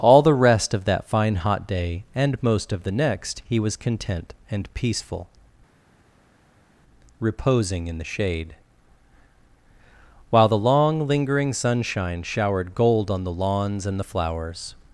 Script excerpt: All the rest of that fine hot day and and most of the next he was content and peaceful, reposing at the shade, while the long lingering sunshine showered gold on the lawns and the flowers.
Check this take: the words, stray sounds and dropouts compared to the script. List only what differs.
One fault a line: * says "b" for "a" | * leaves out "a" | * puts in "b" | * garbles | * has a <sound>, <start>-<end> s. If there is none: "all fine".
* leaves out "and"
* says "in" for "at"